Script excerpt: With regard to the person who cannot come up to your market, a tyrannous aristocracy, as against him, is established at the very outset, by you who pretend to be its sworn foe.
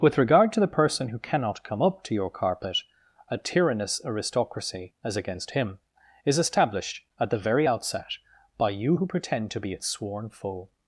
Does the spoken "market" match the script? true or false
false